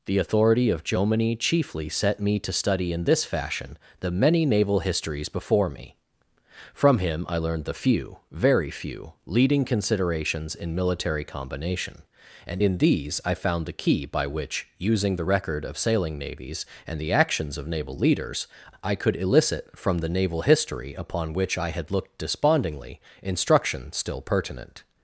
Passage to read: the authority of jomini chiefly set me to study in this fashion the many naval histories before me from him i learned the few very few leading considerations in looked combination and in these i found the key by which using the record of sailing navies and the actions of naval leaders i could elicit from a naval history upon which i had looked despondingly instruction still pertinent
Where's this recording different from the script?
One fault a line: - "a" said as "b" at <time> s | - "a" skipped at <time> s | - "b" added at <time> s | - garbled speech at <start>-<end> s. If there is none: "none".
- "looked" said as "military" at 10.7 s
- "a" said as "the" at 20.0 s